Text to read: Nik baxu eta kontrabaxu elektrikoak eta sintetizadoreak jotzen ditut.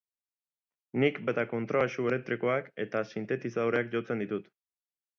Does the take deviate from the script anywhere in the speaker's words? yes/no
yes